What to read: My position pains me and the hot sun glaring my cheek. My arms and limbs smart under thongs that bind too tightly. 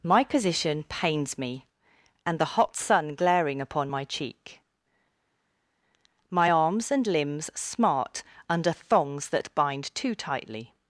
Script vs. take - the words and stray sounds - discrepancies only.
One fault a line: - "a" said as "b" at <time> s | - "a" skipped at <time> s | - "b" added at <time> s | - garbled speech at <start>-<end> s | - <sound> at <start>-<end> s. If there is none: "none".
- "upon" added at 3.6 s